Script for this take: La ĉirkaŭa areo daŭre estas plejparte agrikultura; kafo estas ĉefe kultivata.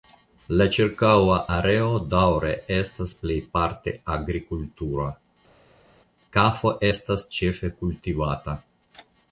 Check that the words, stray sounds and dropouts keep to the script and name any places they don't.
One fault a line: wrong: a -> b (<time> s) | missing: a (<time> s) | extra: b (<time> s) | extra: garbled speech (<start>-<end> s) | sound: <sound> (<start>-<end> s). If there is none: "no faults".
no faults